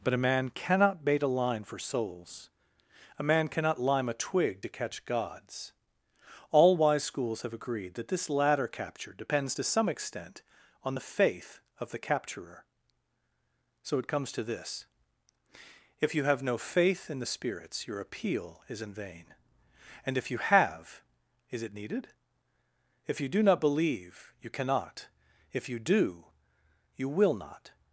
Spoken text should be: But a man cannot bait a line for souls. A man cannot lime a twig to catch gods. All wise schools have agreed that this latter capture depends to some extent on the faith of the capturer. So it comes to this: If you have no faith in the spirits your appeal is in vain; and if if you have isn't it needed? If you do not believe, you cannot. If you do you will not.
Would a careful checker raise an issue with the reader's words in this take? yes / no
yes